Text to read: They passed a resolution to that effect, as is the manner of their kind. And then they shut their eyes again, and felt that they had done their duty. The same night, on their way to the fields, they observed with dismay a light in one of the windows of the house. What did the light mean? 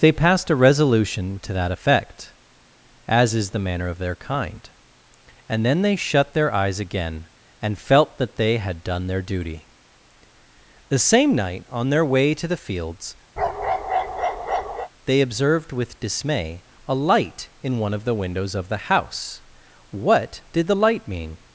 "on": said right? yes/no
yes